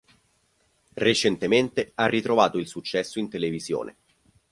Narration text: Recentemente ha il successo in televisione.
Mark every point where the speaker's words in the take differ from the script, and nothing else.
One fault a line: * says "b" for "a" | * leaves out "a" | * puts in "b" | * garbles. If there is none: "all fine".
* puts in "ritrovato"